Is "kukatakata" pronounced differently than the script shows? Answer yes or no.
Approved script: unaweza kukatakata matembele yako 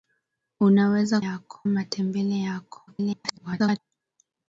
yes